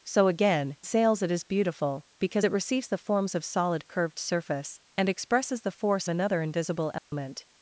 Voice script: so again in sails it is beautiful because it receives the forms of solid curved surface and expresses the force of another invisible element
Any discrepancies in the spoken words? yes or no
yes